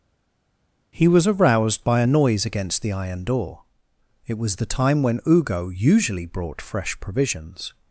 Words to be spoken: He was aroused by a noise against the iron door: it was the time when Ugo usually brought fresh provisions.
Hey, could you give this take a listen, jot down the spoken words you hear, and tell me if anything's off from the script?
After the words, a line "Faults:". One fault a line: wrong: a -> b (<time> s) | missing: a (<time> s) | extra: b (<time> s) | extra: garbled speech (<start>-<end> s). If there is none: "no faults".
He was aroused by a noise against the iron door: it was the time when Ugo usually brought fresh provisions.
Faults:
no faults